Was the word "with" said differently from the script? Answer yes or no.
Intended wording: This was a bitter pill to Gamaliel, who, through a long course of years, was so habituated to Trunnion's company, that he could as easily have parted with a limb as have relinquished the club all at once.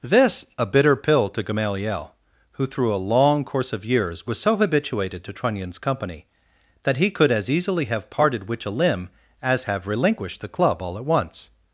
yes